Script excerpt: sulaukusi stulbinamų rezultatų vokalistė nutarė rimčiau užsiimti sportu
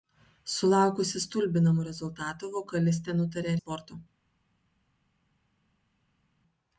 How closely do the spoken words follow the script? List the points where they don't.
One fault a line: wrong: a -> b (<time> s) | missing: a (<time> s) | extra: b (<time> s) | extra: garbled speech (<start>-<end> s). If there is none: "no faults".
missing: rimčiau užsiimti (3.5 s)